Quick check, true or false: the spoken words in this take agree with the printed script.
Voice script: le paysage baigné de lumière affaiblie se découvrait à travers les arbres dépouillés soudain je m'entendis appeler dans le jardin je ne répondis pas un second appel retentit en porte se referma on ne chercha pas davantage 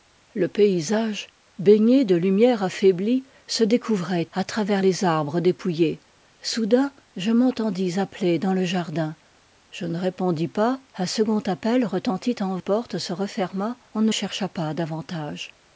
true